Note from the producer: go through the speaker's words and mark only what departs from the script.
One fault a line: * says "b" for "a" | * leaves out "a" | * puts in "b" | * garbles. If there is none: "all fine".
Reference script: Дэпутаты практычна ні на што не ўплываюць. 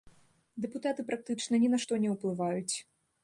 all fine